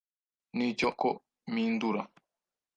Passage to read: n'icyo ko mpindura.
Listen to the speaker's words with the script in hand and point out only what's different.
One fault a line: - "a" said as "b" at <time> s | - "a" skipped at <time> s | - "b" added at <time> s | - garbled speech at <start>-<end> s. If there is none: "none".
none